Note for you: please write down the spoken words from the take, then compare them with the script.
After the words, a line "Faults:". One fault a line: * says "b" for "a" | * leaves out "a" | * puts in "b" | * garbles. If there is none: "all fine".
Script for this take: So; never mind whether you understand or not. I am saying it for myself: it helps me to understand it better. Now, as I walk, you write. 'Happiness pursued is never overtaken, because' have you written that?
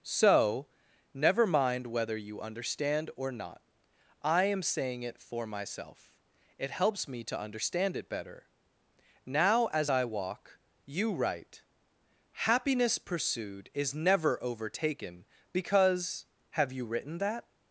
So; never mind whether you understand or not. I am saying it for myself: it helps me to understand it better. Now, as I walk, you write. 'Happiness pursued is never overtaken, because' have you written that?
Faults:
all fine